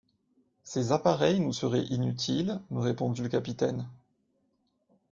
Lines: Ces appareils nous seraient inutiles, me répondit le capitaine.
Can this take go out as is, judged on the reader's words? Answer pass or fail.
pass